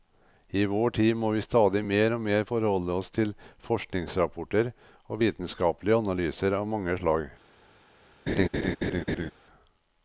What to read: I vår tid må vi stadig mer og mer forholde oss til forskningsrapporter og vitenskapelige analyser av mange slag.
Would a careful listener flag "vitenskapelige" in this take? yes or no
no